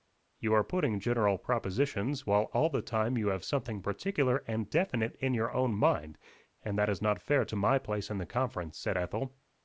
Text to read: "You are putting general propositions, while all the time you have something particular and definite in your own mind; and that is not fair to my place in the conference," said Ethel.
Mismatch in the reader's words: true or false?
false